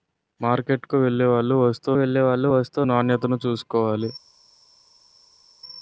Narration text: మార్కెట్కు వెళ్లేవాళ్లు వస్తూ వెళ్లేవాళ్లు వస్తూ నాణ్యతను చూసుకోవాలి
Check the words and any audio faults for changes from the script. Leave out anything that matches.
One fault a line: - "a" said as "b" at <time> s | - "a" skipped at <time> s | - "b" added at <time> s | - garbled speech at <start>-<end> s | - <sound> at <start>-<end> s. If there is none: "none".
none